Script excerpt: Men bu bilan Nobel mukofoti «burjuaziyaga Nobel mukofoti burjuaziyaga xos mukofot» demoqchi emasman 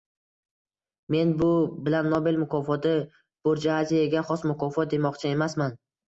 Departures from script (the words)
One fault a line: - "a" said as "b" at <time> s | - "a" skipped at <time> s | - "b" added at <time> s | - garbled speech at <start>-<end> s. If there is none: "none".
- "Nobel mukofoti burjuaziyaga" skipped at 4.2 s